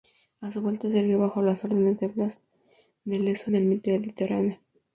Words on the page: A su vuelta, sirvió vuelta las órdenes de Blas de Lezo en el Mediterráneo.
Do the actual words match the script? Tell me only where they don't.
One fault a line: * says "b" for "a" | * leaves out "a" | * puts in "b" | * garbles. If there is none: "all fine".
* says "bajo" for "vuelta"